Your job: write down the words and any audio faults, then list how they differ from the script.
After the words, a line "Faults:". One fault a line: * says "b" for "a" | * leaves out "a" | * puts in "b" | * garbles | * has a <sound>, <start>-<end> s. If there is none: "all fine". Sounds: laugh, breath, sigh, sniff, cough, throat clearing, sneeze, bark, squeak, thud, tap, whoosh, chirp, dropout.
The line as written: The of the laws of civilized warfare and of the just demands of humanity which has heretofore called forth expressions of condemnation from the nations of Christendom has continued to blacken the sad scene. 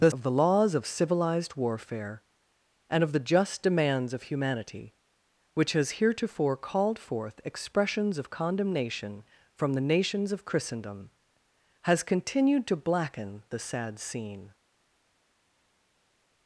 The of the laws of civilized warfare and of the just demands of humanity which has heretofore called forth expressions of condemnation from the nations of Christendom has continued to blacken the sad scene.
Faults:
all fine